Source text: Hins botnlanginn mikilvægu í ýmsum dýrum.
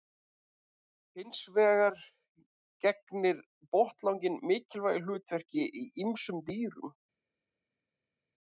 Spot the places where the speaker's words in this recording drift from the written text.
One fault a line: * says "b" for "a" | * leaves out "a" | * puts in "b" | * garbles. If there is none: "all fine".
* puts in "vegar gegnir"
* puts in "hlutverki"